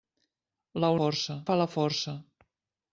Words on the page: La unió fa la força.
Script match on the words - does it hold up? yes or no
no